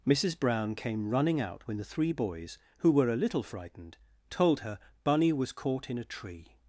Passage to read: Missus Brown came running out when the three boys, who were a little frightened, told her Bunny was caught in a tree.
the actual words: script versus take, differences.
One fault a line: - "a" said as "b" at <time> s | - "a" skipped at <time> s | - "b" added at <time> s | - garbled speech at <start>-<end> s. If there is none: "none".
none